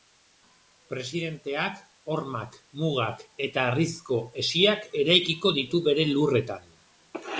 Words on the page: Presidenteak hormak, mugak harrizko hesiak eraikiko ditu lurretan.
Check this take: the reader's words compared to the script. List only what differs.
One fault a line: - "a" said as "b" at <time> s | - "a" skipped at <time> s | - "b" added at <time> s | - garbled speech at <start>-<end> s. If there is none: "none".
- "eta" added at 3.5 s
- "bere" added at 5.9 s